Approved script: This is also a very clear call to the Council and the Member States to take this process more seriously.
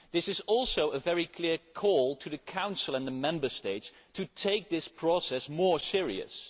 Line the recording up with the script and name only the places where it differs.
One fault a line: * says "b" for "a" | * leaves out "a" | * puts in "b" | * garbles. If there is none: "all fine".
all fine